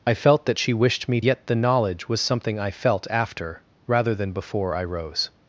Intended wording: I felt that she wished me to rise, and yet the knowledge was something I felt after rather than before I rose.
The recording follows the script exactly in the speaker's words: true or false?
false